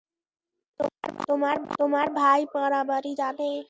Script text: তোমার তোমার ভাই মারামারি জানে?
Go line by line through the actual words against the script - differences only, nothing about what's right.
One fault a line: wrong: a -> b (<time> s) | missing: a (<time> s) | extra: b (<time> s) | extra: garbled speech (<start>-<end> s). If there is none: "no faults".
no faults